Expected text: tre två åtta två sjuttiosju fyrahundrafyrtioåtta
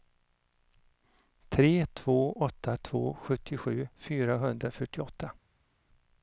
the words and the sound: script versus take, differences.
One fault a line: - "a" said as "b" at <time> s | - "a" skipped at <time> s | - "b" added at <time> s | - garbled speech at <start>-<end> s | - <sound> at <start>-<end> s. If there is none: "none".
none